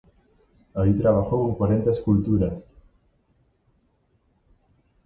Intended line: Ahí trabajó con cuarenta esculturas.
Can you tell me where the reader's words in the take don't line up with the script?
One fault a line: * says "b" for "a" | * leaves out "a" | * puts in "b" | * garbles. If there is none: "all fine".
all fine